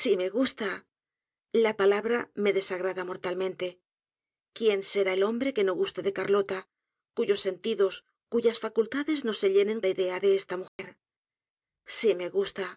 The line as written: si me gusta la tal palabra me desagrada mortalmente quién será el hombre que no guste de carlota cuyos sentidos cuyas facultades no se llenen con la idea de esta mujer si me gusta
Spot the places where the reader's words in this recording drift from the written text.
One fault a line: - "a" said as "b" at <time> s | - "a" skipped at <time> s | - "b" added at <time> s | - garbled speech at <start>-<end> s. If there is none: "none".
- "tal" skipped at 1.7 s
- "con" skipped at 9.8 s